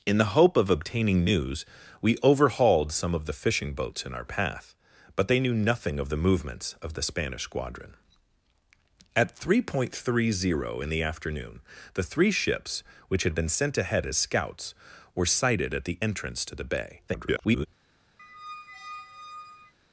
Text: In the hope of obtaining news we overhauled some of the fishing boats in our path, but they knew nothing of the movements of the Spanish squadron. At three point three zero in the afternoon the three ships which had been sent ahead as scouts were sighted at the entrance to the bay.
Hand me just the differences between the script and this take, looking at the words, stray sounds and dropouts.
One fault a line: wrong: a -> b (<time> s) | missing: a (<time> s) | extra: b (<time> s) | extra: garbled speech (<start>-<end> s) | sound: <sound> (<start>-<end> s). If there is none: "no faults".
extra: garbled speech (17.1-17.7 s)
sound: squeak (18.2-19.7 s)